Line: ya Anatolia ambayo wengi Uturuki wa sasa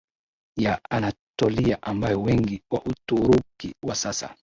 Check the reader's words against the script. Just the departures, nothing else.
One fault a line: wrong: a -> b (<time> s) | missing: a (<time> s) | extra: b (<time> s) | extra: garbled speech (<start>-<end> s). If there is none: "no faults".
extra: wa (2.7 s)